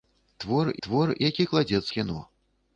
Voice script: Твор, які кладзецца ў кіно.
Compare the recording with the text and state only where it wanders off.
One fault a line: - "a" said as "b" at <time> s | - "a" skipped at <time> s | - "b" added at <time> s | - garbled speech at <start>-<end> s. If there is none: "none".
- "твор" added at 0.9 s
- "ў" skipped at 1.9 s